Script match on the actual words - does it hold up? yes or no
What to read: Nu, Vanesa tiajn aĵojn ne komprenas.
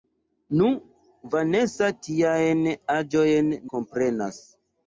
no